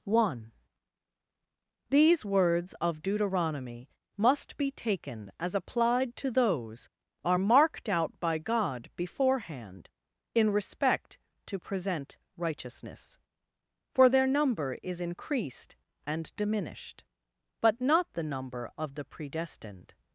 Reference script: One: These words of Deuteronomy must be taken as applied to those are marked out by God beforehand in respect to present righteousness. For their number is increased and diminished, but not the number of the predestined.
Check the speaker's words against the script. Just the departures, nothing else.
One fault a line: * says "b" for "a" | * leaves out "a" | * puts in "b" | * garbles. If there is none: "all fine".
all fine